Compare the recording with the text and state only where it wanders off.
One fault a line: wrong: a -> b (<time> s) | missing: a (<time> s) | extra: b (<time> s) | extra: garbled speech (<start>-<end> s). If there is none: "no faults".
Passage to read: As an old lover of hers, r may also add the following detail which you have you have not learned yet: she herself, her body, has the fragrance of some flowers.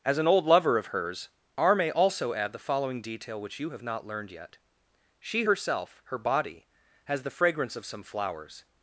missing: you have (3.8 s)